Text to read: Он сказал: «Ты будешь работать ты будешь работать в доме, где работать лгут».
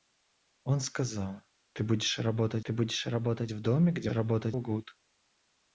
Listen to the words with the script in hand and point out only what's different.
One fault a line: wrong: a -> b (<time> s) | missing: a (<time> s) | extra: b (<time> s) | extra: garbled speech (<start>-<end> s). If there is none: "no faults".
no faults